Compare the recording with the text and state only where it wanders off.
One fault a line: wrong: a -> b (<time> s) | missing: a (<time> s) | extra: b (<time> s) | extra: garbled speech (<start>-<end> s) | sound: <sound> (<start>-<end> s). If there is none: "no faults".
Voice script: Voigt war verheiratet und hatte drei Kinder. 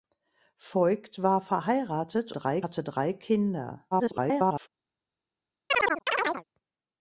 wrong: und -> drei (2.3 s)
extra: garbled speech (3.9-4.7 s)
sound: chirp (5.7-6.4 s)